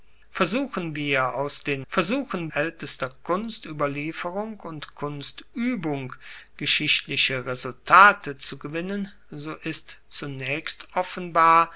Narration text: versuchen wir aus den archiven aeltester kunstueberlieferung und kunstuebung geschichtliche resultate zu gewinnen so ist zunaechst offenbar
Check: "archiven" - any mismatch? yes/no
yes